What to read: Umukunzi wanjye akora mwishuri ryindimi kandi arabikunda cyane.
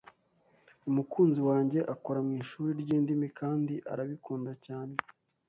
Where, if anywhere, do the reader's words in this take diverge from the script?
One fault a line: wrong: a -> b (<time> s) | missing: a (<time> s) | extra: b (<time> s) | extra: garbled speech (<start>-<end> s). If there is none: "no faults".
no faults